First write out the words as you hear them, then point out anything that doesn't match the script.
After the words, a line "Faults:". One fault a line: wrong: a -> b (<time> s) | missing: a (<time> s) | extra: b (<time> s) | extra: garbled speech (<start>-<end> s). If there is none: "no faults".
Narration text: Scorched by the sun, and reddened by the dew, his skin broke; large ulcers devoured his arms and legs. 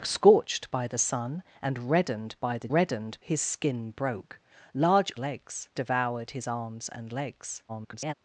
Scorched by the sun, and reddened by the reddened, his skin broke; large legs devoured his arms and legs. [garbled]
Faults:
wrong: dew -> reddened (2.7 s)
wrong: ulcers -> legs (5.2 s)
extra: garbled speech (7.7-8.1 s)